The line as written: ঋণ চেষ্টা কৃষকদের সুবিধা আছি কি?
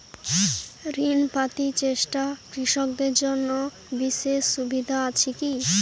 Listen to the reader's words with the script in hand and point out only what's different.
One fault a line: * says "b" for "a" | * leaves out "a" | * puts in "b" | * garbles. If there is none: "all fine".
* puts in "পাতি"
* puts in "জন্য বিশেষ"